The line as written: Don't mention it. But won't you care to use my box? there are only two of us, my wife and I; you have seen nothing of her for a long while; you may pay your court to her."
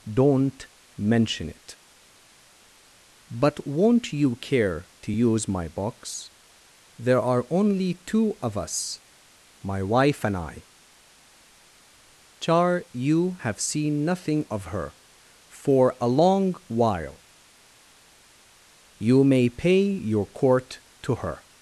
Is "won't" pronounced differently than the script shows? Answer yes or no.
no